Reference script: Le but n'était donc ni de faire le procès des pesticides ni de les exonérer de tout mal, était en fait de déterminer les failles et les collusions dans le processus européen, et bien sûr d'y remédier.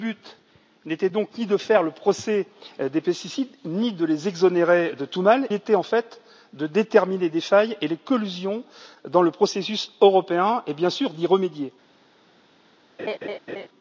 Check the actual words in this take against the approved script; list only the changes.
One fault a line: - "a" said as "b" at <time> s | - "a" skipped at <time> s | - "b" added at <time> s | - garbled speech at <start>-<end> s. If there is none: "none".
none